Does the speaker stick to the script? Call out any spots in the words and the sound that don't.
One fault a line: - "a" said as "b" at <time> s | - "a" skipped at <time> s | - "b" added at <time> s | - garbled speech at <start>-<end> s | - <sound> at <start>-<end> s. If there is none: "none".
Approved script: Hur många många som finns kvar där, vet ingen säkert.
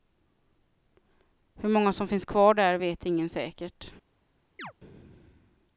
- "många" skipped at 1.9 s
- chirp at 4.6-4.7 s